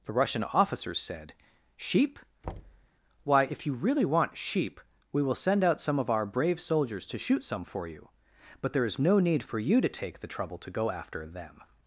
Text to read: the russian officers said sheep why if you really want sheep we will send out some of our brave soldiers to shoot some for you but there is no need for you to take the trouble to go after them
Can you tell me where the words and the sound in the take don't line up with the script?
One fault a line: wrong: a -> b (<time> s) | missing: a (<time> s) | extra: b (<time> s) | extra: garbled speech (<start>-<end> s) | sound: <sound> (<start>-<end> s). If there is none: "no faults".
sound: thud (2.4-2.9 s)